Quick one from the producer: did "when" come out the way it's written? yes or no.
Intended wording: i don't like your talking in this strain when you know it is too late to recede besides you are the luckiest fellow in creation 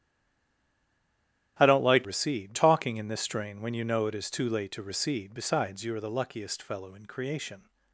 yes